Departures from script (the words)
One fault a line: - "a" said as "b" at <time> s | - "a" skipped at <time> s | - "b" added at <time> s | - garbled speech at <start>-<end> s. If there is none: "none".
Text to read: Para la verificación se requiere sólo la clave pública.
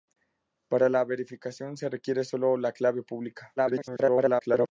- garbled speech at 3.6-4.7 s